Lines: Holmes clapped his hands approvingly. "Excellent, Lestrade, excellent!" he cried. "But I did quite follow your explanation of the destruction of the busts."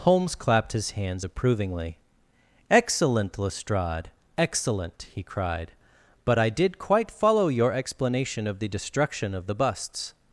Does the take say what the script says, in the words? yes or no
yes